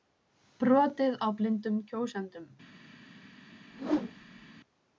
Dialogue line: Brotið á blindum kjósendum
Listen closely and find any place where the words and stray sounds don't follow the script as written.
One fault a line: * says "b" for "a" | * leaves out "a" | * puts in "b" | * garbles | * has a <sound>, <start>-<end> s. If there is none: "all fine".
* has a whoosh, 3.7-4.5 s